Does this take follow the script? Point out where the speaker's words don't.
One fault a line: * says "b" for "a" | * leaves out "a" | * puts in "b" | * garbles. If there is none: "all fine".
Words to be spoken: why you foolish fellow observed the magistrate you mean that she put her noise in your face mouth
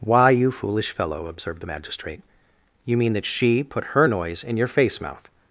all fine